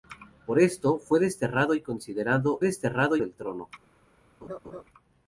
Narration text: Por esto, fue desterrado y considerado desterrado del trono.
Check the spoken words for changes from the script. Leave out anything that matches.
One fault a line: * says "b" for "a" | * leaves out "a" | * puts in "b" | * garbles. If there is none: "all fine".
all fine